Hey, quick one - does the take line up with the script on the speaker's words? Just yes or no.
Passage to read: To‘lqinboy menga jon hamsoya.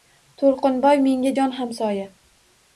yes